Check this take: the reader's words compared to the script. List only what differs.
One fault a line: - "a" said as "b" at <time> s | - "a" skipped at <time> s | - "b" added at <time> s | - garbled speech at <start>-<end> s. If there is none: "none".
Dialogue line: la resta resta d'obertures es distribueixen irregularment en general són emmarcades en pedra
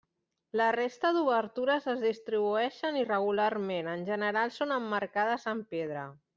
- "resta" skipped at 1.1 s